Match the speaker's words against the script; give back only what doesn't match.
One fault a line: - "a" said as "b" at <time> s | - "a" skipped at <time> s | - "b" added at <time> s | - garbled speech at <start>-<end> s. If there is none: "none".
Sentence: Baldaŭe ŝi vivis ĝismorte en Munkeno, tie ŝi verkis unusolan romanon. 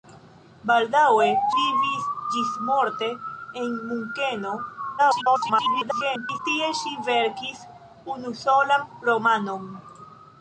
- "ŝi" skipped at 1.2 s
- garbled speech at 5.0-6.4 s